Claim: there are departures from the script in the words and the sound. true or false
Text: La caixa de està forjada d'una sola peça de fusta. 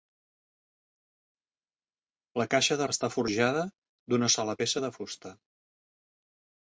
false